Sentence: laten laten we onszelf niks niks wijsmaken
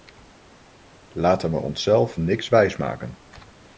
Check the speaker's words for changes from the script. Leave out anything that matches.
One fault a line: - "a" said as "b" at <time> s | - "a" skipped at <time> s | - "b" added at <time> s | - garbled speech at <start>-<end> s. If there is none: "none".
- "laten" skipped at 1.5 s
- "niks" skipped at 2.5 s